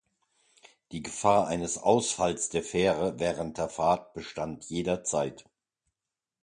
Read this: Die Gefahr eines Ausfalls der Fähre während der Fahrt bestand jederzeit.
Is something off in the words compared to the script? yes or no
no